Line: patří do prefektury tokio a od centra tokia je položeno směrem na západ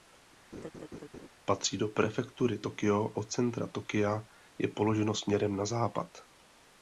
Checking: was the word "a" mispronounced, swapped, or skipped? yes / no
yes